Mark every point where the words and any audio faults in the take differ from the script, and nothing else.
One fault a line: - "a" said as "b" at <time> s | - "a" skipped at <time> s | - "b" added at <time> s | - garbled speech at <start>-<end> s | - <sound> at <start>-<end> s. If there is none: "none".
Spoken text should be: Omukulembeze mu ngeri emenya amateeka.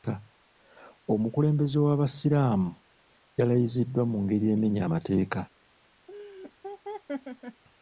- "w'abasiraamu yalayiziddwa" added at 1.9 s
- laugh at 6.1-7.6 s